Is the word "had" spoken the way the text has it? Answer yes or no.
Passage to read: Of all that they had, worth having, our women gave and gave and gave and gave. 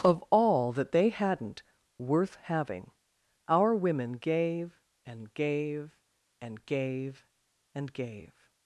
no